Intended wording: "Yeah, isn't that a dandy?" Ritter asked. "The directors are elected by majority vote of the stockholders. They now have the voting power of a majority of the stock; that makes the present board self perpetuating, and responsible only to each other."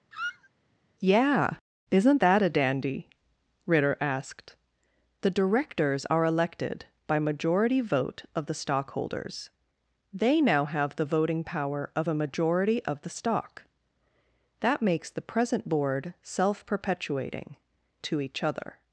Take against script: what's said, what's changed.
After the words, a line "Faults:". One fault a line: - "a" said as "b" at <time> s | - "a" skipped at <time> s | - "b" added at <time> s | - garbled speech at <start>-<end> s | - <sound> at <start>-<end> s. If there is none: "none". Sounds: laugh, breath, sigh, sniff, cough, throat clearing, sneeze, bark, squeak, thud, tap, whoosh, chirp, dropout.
"Yeah, isn't that a dandy?" Ritter asked. "The directors are elected by majority vote of the stockholders. They now have the voting power of a majority of the stock; that makes the present board self perpetuating, to each other."
Faults:
- squeak at 0.1-0.5 s
- "and responsible only" skipped at 17.6 s